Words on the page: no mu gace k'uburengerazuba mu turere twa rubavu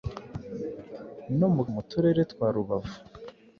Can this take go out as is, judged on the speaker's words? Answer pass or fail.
fail